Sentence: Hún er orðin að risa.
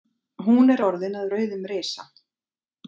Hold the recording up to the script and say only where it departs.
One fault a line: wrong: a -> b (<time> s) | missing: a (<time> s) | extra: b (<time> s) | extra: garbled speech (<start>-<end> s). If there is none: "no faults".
extra: rauðum (1.3 s)